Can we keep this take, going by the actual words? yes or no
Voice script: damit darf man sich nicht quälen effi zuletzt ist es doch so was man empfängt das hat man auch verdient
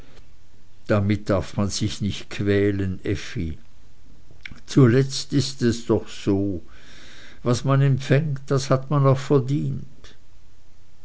yes